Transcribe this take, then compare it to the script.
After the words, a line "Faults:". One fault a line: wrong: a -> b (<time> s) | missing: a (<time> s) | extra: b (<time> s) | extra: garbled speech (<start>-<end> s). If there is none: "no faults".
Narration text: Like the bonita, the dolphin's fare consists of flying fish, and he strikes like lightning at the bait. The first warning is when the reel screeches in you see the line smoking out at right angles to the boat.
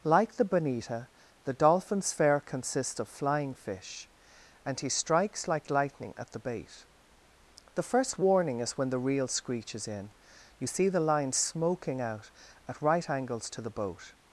Like the bonita, the dolphin's fare consists of flying fish, and he strikes like lightning at the bait. The first warning is when the reel screeches in you see the line smoking out at right angles to the boat.
Faults:
no faults